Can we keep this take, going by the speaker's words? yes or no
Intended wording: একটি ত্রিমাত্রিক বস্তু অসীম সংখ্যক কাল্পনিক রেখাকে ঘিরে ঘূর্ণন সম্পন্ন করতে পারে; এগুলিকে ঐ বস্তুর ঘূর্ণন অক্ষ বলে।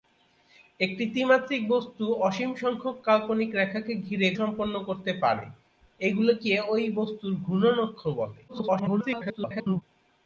no